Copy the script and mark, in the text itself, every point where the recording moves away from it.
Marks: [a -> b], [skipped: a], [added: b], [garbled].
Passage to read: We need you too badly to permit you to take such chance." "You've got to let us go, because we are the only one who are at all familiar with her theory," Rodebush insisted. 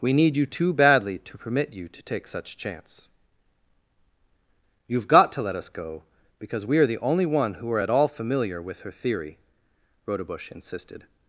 We need you too badly to permit you to take such chance." "You've got to let us go, because we are the only one who are at all familiar with her theory," Rodebush insisted.